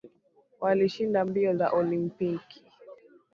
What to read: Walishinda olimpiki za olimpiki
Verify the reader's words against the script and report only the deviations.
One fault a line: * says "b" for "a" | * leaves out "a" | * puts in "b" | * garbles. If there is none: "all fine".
* says "mbio" for "olimpiki"